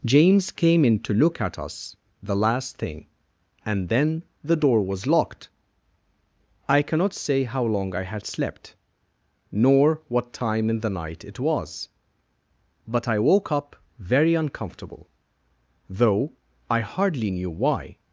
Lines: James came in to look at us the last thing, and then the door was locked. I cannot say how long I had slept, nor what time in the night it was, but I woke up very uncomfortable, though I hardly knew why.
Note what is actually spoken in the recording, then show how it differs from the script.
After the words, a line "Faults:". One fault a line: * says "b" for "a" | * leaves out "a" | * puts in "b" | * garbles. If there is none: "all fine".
James came in to look at us the last thing, and then the door was locked. I cannot say how long I had slept, nor what time in the night it was, but I woke up very uncomfortable, though I hardly knew why.
Faults:
all fine